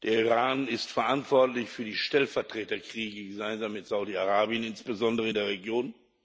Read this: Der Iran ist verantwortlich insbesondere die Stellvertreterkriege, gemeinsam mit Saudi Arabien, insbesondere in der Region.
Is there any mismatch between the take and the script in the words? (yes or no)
yes